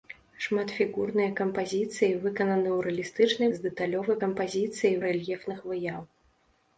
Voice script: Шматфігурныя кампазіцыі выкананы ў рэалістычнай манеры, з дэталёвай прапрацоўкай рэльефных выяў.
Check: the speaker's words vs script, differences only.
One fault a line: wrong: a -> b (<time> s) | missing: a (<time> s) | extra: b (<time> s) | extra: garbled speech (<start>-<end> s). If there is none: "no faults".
missing: манеры (3.5 s)
wrong: прапрацоўкай -> кампазіцыі (4.2 s)